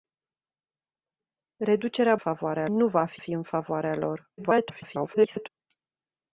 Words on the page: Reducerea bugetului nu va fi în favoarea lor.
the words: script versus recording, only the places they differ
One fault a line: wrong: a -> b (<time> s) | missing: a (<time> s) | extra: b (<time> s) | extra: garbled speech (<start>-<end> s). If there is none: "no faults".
wrong: bugetului -> favoarea (2.2 s)
extra: fi (3.2 s)
extra: garbled speech (4.4-5.5 s)